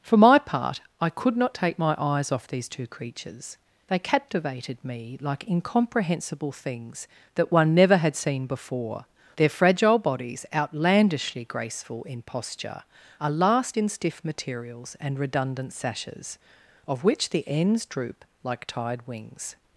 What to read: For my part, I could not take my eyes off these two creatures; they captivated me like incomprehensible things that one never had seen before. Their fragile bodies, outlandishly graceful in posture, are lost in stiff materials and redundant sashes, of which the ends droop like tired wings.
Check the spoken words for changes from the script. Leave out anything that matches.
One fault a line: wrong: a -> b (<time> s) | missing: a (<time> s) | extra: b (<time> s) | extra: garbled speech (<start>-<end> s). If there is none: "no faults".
wrong: lost -> last (13.3 s)